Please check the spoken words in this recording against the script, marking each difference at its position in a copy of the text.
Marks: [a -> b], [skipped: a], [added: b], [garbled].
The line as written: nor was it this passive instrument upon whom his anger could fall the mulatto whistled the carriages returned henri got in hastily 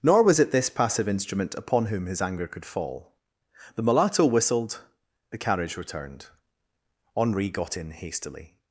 nor was it this passive instrument upon whom his anger could fall the mulatto whistled the [carriages -> carriage] returned henri got in hastily